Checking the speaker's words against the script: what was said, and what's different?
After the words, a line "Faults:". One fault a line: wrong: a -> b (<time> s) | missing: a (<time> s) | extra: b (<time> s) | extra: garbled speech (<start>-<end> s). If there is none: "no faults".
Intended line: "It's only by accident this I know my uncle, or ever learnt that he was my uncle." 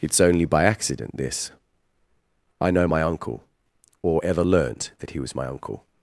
"It's only by accident this I know my uncle, or ever learnt that he was my uncle."
Faults:
no faults